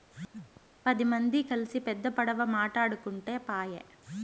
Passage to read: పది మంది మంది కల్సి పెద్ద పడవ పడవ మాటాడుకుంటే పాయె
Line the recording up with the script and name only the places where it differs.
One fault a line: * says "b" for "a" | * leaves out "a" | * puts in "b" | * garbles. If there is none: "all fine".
* leaves out "మంది"
* leaves out "పడవ"